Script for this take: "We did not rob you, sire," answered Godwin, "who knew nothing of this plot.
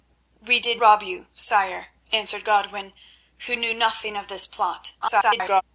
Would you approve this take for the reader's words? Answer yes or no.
no